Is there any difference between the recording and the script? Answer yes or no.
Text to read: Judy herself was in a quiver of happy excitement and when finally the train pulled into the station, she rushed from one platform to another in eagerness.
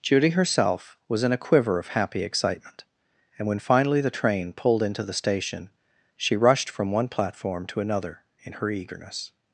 yes